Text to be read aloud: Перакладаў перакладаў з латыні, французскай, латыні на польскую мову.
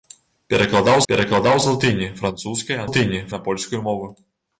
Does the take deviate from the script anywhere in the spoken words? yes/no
no